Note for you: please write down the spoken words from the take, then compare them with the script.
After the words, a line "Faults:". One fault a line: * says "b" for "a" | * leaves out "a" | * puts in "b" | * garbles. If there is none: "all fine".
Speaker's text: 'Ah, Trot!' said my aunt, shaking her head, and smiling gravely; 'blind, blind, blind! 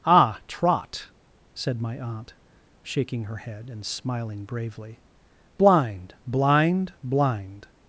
'Ah, Trot!' said my aunt, shaking her head, and smiling bravely; 'blind, blind, blind!
Faults:
* says "bravely" for "gravely"